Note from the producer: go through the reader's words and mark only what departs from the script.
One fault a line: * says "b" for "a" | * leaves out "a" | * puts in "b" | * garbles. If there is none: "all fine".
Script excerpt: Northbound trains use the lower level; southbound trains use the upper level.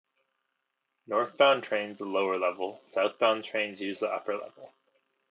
* leaves out "use"